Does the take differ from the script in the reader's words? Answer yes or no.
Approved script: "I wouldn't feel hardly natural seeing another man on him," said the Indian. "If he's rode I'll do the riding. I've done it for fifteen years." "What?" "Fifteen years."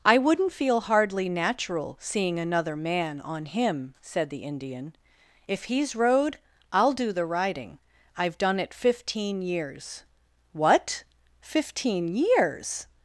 yes